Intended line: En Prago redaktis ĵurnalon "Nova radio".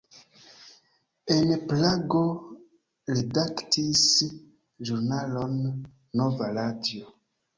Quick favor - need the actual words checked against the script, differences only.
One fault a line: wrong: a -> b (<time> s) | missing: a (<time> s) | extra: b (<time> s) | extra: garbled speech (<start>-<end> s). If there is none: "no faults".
no faults